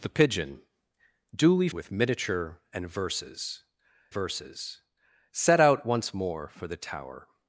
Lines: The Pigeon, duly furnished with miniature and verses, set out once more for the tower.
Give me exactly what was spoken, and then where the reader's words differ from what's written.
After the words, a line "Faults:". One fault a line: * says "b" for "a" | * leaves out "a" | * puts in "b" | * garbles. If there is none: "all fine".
The Pigeon, duly with miniature and verses verses, set out once more for the tower.
Faults:
* leaves out "furnished"
* puts in "verses"